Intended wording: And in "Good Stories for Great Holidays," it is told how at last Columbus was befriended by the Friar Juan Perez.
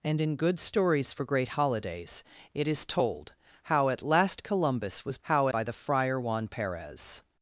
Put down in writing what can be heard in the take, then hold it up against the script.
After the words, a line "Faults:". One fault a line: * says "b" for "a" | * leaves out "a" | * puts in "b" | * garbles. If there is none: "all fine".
And in "Good Stories for Great Holidays," it is told how at last Columbus was how by the Friar Juan Perez.
Faults:
* says "how" for "befriended"